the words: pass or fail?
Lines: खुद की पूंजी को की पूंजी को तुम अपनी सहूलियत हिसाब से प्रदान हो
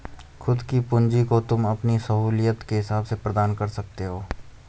fail